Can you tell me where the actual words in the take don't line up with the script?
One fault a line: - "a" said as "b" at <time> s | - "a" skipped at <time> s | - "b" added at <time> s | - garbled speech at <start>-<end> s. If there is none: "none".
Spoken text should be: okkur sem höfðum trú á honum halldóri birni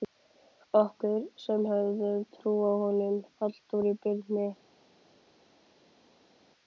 none